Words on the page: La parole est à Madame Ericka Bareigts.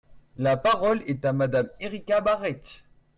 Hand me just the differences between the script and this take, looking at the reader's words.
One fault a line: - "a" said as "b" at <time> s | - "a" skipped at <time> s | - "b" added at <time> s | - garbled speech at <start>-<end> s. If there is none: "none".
none